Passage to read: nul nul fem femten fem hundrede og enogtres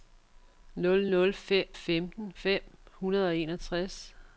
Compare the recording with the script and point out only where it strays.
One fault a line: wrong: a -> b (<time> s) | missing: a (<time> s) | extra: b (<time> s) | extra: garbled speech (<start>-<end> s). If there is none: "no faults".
no faults